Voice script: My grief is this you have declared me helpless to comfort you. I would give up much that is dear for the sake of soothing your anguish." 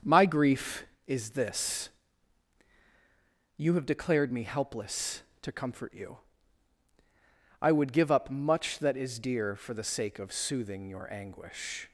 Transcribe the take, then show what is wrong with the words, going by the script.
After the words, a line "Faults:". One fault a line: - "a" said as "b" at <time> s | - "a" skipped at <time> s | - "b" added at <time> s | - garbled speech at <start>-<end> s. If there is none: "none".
My grief is this you have declared me helpless to comfort you. I would give up much that is dear for the sake of soothing your anguish."
Faults:
none